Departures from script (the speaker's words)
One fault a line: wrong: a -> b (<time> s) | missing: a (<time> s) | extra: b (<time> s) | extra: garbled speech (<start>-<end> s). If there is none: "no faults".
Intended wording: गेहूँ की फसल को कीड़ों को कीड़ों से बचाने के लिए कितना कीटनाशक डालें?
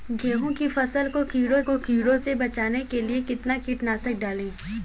no faults